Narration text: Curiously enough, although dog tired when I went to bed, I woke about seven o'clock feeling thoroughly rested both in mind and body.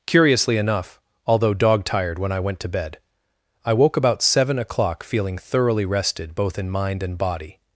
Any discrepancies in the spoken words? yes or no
no